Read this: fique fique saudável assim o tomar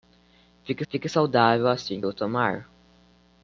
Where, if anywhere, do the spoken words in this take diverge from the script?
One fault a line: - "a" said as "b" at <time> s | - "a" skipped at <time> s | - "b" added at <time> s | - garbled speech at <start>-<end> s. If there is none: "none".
none